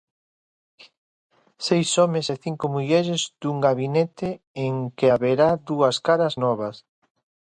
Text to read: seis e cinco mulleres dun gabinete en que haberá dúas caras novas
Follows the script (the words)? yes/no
no